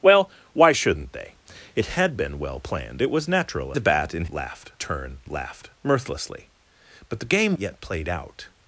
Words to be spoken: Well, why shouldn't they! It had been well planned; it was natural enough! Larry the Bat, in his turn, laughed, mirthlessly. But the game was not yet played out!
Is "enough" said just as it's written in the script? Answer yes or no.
no